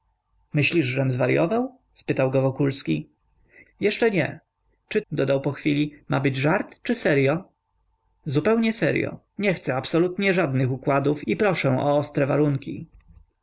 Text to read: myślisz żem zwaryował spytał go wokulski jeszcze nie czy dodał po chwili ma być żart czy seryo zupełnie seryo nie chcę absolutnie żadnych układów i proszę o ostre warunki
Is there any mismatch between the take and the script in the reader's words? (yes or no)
no